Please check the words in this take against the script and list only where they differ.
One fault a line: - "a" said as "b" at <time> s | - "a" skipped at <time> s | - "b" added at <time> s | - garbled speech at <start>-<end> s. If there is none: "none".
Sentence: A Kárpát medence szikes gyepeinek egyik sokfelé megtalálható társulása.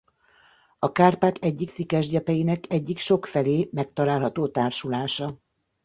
- "medence" said as "egyik" at 1.4 s